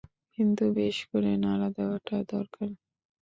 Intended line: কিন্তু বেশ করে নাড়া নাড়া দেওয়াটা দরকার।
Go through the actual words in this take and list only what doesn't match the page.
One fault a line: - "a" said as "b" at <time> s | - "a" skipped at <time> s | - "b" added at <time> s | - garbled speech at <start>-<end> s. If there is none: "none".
- "নাড়া" skipped at 1.7 s